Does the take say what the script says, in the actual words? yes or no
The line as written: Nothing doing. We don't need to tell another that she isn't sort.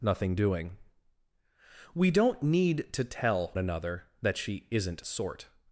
yes